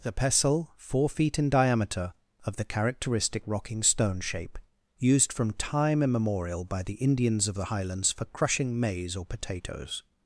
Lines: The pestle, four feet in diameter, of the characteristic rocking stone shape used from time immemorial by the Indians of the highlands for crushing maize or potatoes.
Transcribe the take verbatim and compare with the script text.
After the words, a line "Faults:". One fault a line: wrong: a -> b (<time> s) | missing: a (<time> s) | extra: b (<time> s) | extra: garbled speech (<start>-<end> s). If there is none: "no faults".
The pestle, four feet in diameter, of the characteristic rocking stone shape used from time immemorial by the Indians of the highlands for crushing maize or potatoes.
Faults:
no faults